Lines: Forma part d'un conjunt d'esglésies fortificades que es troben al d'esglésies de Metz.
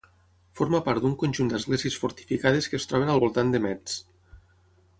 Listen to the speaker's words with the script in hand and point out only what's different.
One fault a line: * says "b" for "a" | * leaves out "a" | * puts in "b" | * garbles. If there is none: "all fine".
* says "voltant" for "d'esglésies"